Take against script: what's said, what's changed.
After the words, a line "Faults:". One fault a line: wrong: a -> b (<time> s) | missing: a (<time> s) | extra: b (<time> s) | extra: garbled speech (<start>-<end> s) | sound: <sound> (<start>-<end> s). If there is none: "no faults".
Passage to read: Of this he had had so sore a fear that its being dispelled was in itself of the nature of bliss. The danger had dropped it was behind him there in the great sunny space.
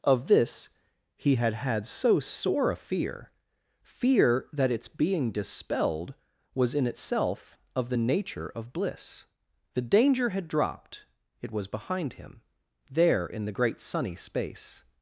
Of this he had had so sore a fear fear that its being dispelled was in itself of the nature of bliss. The danger had dropped it was behind him there in the great sunny space.
Faults:
extra: fear (3.8 s)